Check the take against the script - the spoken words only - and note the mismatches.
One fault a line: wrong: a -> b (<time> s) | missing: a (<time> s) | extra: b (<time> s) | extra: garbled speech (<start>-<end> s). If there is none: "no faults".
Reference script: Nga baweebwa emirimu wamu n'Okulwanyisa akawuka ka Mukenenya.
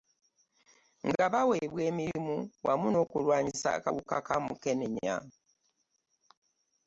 no faults